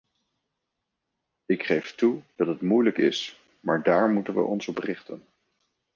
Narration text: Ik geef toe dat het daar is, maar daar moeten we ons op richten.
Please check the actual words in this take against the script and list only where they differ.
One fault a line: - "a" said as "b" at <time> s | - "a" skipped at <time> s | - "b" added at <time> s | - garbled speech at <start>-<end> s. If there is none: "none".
- "daar" said as "moeilijk" at 2.6 s